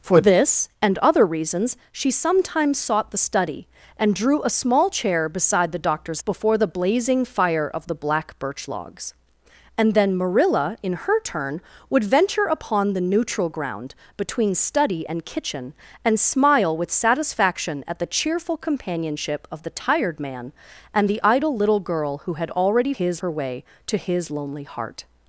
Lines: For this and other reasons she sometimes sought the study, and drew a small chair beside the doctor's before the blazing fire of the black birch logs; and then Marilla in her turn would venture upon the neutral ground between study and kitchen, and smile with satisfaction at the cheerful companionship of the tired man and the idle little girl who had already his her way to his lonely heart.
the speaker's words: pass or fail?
pass